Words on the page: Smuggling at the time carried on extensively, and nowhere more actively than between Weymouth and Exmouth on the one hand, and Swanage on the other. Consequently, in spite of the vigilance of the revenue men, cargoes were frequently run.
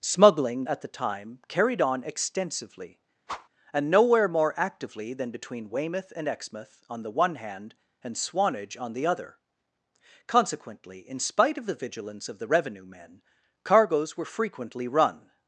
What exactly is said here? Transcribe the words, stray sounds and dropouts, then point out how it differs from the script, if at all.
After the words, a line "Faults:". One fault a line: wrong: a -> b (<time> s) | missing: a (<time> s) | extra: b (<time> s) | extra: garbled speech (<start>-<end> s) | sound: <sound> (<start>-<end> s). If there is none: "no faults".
Smuggling at the time carried on extensively, and nowhere more actively than between Weymouth and Exmouth on the one hand, and Swanage on the other. Consequently, in spite of the vigilance of the revenue men, cargoes were frequently run.
Faults:
sound: whoosh (3.3-3.5 s)